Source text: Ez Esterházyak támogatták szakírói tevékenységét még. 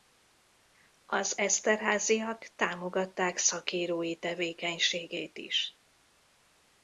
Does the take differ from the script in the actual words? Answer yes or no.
yes